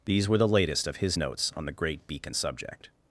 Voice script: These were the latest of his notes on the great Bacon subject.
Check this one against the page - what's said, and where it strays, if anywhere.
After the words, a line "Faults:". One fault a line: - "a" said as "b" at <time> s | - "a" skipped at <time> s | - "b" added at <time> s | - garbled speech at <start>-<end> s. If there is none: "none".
These were the latest of his notes on the great Beacon subject.
Faults:
- "Bacon" said as "Beacon" at 2.1 s